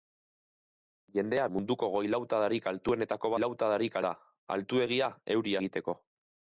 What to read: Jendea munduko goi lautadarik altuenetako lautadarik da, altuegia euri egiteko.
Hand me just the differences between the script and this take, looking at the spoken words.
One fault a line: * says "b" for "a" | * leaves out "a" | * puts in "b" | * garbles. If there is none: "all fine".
all fine